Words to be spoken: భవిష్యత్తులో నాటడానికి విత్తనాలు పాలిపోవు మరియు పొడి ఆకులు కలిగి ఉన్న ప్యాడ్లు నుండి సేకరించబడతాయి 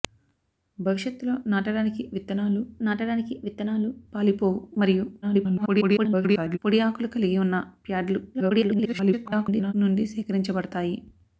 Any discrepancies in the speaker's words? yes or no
yes